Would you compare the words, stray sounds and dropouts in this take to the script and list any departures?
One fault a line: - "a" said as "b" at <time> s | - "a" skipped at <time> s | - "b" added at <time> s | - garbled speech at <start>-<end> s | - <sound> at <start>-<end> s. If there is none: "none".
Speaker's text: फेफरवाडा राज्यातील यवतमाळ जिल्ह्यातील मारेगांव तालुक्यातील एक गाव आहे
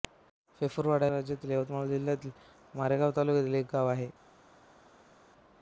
none